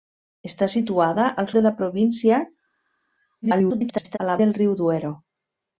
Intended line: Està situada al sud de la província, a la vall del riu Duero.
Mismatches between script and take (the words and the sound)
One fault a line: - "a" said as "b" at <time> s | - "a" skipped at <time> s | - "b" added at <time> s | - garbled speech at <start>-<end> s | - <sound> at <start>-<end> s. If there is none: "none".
- "sud" skipped at 1.5 s
- garbled speech at 3.4-4.2 s
- "vall" skipped at 4.4 s